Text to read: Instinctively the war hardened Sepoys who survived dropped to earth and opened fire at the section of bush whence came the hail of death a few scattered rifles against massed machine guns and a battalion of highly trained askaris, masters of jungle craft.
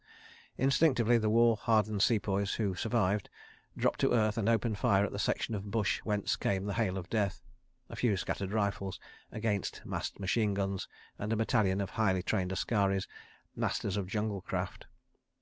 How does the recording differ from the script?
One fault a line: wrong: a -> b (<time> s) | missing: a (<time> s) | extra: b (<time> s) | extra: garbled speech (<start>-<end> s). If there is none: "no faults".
no faults